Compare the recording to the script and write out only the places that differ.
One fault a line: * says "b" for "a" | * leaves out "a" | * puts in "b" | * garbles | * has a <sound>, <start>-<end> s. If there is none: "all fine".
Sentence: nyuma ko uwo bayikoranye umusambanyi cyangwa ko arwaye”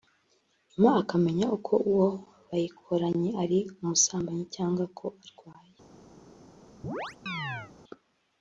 * puts in "akamenya"
* puts in "ari"
* has a chirp, 6.8-7.7 s